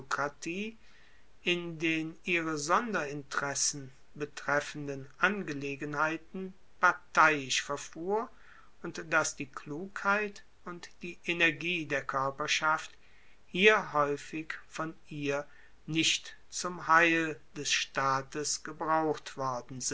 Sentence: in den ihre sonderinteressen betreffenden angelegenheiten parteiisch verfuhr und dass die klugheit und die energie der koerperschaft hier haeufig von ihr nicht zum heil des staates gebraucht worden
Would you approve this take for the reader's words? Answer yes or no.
yes